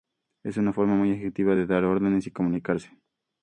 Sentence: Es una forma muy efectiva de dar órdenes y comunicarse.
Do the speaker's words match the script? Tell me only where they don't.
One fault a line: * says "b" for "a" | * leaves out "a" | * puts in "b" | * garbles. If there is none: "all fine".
all fine